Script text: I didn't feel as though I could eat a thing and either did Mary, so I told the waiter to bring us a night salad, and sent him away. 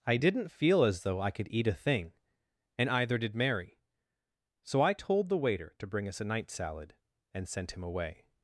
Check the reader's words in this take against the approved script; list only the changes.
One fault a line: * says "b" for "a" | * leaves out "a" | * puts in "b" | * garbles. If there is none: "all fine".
all fine